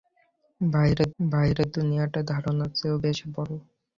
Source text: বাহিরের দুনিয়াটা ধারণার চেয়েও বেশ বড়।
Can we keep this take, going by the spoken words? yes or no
no